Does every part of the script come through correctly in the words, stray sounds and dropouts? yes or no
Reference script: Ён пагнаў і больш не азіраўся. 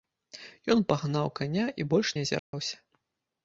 no